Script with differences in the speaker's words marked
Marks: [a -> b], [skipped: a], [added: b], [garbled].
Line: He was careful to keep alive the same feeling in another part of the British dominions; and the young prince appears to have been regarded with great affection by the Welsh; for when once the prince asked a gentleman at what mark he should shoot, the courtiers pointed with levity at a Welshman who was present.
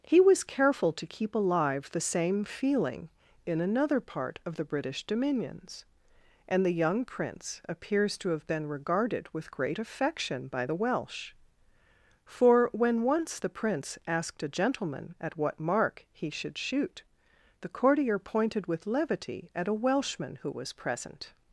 He was careful to keep alive the same feeling in another part of the British dominions; and the young prince appears to have been regarded with great affection by the Welsh; for when once the prince asked a gentleman at what mark he should shoot, the [courtiers -> courtier] pointed with levity at a Welshman who was present.